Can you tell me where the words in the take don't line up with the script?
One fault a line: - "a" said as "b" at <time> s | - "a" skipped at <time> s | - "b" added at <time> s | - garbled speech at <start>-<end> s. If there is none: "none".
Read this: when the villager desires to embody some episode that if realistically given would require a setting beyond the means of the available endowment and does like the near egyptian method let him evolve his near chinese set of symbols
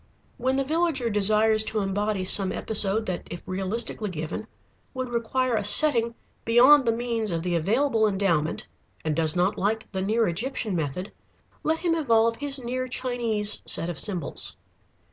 - "not" added at 9.3 s